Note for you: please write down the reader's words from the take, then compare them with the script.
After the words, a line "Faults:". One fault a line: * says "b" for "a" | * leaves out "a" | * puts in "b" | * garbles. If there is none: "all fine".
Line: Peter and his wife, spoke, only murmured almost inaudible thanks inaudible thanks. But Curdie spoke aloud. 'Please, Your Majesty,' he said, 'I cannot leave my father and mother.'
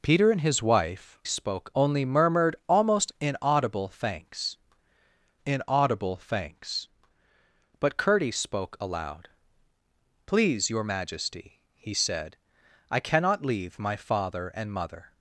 Peter and his wife, spoke, only murmured almost inaudible thanks inaudible thanks. But Curdie spoke aloud. 'Please, Your Majesty,' he said, 'I cannot leave my father and mother.'
Faults:
all fine